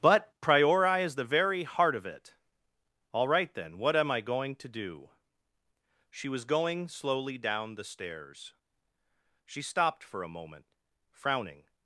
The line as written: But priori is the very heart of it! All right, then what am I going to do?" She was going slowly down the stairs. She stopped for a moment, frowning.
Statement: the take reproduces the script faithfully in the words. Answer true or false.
true